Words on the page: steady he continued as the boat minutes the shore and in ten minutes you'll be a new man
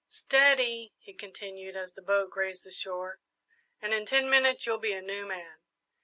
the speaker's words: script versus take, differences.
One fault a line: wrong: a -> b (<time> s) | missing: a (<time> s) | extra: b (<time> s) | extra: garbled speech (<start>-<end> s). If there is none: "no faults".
wrong: minutes -> grazed (2.3 s)